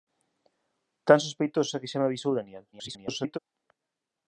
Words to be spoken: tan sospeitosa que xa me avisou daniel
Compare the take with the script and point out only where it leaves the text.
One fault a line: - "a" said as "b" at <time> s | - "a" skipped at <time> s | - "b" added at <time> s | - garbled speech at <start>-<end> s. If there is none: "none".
- garbled speech at 2.7-3.4 s